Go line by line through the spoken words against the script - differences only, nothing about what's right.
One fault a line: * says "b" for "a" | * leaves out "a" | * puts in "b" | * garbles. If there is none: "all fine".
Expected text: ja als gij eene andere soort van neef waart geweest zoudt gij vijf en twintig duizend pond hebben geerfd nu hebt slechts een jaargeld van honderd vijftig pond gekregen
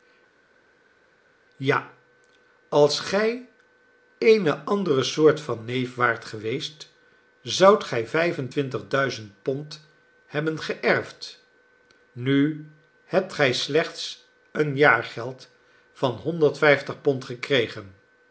* puts in "gij"